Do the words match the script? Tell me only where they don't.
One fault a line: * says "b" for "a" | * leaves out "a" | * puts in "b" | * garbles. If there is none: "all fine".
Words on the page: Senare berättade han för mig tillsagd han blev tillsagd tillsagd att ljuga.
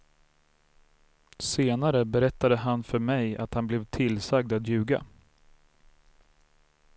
* says "att" for "tillsagd"
* leaves out "tillsagd"